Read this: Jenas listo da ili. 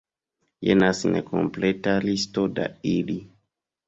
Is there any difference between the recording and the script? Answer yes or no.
yes